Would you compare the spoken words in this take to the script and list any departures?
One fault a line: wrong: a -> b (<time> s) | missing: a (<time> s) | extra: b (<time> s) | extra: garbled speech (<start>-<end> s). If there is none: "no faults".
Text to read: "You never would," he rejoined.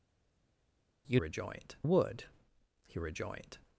wrong: never -> rejoined (1.2 s)